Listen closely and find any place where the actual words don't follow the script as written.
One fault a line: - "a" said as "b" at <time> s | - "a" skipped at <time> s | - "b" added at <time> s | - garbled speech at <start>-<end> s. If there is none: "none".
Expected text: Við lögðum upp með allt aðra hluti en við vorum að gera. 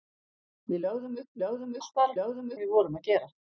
- "með" said as "lögðum" at 1.4 s
- "hluti" said as "lögðum" at 2.2 s